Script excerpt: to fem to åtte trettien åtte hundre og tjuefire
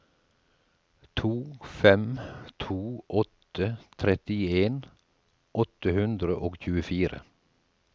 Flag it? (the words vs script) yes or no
no